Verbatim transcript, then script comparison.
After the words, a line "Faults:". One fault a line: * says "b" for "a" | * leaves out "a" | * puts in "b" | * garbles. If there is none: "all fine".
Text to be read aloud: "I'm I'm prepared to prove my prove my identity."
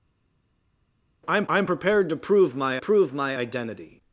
"I'm I'm prepared to prove my prove my identity."
Faults:
all fine